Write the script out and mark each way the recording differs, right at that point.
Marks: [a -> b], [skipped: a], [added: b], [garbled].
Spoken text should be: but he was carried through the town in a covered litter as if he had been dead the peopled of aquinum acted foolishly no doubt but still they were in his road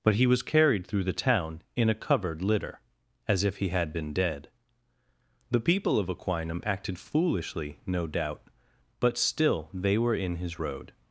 but he was carried through the town in a covered litter as if he had been dead the [peopled -> people] of aquinum acted foolishly no doubt but still they were in his road